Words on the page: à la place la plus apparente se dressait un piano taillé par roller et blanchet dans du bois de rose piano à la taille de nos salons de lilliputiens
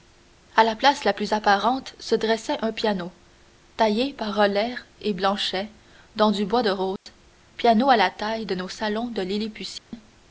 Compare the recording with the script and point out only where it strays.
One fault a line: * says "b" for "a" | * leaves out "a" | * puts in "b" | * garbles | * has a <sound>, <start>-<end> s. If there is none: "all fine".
* has a dropout, 7.0-7.1 s
* has a dropout, 9.8-9.9 s